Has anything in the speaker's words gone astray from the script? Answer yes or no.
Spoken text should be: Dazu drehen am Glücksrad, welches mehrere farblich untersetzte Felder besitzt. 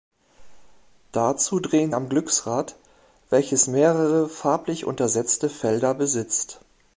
no